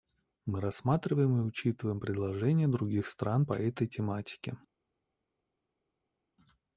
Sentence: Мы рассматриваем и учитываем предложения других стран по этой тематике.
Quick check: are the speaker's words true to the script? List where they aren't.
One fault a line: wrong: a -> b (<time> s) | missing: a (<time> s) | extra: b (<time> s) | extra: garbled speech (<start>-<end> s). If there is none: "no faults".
no faults